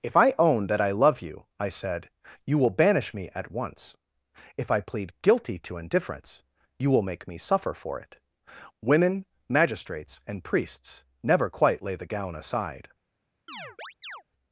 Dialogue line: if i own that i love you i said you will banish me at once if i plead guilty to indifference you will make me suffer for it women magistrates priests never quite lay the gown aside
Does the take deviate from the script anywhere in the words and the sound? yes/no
yes